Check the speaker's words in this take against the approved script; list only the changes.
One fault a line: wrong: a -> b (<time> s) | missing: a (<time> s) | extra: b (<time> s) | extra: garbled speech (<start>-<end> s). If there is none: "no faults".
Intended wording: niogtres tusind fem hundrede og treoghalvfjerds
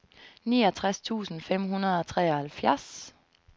no faults